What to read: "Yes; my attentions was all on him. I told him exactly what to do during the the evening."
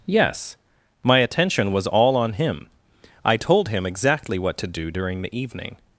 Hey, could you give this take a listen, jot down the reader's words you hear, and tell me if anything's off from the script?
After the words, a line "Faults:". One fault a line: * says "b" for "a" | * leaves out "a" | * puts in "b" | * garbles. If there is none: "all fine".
"Yes; my attention was all on him. I told him exactly what to do during the evening."
Faults:
* says "attention" for "attentions"
* leaves out "the"